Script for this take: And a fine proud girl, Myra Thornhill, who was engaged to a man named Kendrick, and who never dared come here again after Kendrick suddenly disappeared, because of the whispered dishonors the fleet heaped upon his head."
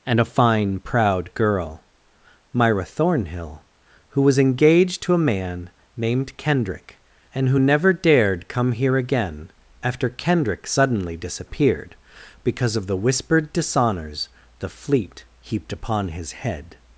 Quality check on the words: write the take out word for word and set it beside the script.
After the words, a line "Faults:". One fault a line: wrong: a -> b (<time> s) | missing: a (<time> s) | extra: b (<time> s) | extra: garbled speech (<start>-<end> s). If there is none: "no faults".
And a fine proud girl, Myra Thornhill, who was engaged to a man named Kendrick, and who never dared come here again after Kendrick suddenly disappeared, because of the whispered dishonors the fleet heaped upon his head."
Faults:
no faults